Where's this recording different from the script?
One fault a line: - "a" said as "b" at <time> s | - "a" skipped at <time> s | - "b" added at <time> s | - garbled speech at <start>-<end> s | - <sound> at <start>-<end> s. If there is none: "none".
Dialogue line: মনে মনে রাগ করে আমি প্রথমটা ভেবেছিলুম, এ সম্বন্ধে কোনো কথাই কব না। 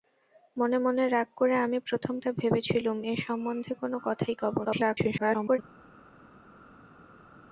- garbled speech at 4.6-5.6 s